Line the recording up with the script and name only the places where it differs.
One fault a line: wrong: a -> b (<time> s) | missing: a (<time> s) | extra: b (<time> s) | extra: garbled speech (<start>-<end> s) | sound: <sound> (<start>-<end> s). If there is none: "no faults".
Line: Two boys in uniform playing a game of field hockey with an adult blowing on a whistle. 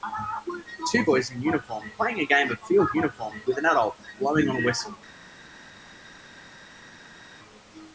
wrong: hockey -> uniform (2.9 s)